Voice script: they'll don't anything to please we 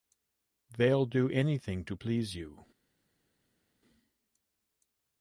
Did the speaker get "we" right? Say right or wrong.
wrong